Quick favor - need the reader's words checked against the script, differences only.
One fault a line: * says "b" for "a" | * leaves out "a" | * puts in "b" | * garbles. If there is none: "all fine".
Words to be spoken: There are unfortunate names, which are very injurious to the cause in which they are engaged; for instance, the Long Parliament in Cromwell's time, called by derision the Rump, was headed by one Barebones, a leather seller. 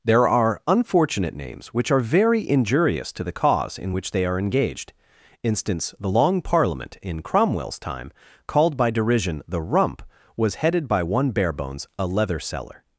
* leaves out "for"